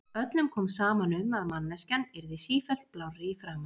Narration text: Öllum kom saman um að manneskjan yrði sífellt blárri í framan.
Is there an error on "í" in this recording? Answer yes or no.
no